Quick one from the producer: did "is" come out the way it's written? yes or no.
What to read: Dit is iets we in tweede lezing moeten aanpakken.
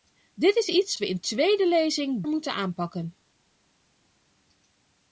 yes